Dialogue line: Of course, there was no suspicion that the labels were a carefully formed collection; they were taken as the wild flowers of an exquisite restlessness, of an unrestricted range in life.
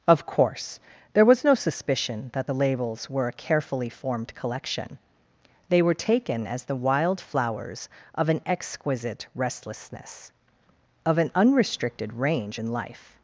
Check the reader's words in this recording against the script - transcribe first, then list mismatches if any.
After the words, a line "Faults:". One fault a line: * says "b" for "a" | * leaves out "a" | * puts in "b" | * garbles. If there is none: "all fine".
Of course, there was no suspicion that the labels were a carefully formed collection; they were taken as the wild flowers of an exquisite restlessness, of an unrestricted range in life.
Faults:
all fine